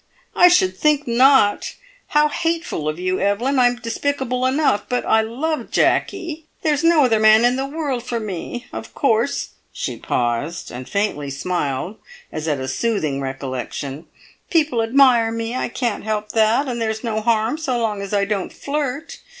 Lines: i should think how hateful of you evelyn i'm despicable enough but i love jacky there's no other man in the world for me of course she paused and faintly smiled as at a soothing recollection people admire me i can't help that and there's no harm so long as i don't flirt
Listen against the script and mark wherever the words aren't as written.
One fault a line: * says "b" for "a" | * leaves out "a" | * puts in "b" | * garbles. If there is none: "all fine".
* puts in "not"